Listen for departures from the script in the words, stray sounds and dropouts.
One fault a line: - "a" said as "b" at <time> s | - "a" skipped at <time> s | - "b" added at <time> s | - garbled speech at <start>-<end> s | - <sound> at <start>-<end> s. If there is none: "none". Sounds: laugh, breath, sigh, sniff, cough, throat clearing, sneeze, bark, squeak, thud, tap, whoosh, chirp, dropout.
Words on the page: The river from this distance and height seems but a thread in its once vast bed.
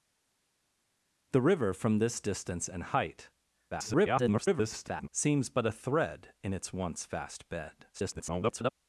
- garbled speech at 3.7-5.1 s
- garbled speech at 7.9-8.7 s